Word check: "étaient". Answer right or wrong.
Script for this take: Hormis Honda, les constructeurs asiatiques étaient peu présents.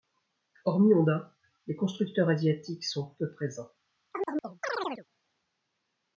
wrong